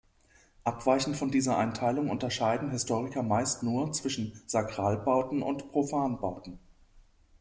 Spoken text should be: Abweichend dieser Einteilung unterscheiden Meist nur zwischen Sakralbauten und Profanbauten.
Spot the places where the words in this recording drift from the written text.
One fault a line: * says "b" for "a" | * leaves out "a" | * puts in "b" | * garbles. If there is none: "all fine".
* puts in "von"
* puts in "Historiker"